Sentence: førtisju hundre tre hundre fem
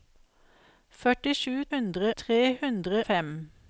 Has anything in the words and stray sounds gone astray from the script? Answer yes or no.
no